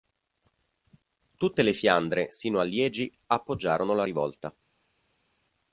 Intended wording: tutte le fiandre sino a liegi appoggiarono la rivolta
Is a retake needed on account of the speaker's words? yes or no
no